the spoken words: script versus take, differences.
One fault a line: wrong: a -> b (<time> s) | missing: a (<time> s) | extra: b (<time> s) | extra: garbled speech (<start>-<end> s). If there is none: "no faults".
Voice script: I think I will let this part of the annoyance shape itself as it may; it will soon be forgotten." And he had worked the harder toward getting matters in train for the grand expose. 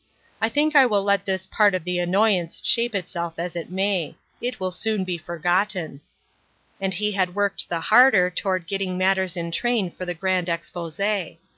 no faults